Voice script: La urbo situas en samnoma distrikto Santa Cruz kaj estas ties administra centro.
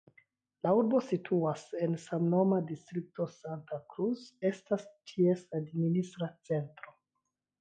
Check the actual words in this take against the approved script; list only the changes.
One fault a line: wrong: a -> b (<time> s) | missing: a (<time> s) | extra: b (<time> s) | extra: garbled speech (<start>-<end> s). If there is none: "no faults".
missing: kaj (4.2 s)